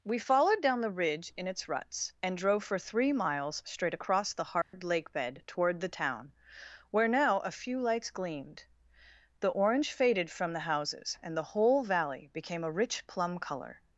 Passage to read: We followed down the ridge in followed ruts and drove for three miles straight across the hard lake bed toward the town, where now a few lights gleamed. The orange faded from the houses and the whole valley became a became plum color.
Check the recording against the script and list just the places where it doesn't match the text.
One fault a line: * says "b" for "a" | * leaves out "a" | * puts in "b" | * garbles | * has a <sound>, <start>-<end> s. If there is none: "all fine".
* says "its" for "followed"
* has a dropout, 4.6-4.7 s
* says "rich" for "became"